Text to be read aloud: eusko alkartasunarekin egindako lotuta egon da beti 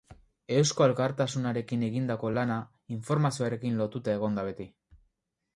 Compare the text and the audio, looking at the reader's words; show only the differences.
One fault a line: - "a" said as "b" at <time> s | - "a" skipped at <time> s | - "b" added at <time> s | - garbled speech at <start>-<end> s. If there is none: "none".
- "lana informazioarekin" added at 2.4 s